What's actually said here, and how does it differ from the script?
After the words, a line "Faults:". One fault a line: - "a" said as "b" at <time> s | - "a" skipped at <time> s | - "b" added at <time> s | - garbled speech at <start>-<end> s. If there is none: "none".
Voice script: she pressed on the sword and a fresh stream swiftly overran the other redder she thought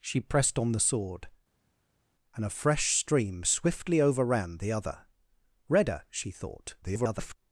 she pressed on the sword and a fresh stream swiftly overran the other redder she thought [garbled]
Faults:
- garbled speech at 6.8-7.4 s